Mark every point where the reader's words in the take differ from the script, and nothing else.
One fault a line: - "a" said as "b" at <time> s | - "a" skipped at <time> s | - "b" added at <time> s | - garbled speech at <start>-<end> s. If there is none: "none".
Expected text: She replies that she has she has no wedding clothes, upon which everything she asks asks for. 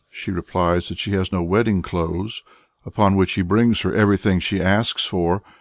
- "she has" skipped at 1.4 s
- "he brings her" added at 3.3 s
- "asks" skipped at 5.0 s